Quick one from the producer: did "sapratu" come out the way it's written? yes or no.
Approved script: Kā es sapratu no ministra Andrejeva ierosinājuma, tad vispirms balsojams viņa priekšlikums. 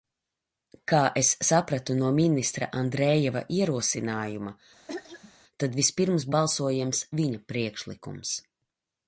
yes